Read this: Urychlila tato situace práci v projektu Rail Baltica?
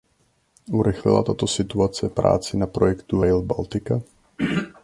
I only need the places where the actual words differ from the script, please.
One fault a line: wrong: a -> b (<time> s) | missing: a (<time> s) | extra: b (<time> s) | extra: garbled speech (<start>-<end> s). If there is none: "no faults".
wrong: v -> na (2.6 s)